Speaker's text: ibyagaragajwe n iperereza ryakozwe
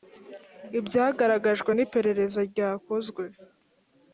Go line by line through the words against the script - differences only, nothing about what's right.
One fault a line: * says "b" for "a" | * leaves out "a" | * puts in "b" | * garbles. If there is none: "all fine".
all fine